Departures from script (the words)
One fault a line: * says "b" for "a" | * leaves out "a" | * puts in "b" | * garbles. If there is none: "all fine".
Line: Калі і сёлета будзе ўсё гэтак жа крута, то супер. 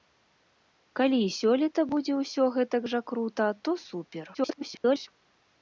* garbles